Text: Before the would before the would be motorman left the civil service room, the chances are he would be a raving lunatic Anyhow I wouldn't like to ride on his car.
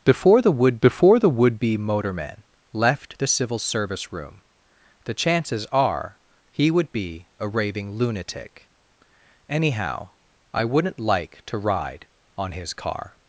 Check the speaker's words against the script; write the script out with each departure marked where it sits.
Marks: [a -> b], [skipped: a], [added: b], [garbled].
Before the would before the would be motorman left the civil service room, the chances are he would be a raving lunatic Anyhow I wouldn't like to ride on his car.